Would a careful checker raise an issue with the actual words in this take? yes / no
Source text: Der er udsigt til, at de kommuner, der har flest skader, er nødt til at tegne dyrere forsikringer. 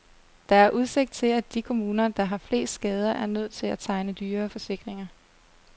no